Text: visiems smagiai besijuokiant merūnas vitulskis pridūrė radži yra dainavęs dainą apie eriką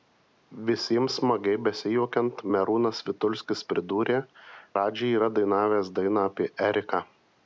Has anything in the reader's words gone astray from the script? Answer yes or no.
no